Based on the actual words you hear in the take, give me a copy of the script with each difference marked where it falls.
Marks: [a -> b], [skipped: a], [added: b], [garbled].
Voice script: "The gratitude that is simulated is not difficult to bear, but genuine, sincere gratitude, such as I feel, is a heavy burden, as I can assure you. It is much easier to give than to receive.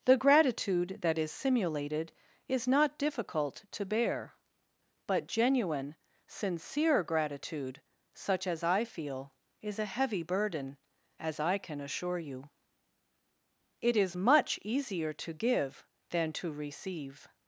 "The gratitude that is simulated is not difficult to bear, but genuine, sincere gratitude, such as I feel, is a heavy burden, as I can assure you. It is much easier to give than to receive.